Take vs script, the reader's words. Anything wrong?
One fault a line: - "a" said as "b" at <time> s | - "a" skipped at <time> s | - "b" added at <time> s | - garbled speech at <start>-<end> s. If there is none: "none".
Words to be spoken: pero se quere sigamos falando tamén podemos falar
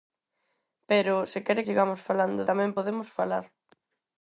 none